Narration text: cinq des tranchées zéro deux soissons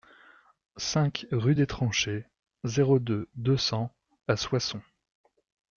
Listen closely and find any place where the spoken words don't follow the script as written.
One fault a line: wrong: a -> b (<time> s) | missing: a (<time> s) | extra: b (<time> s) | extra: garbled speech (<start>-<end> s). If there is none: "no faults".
extra: rue (1.3 s)
extra: deux cents à (3.3 s)